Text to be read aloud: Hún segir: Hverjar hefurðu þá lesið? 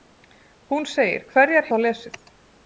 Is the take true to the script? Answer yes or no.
no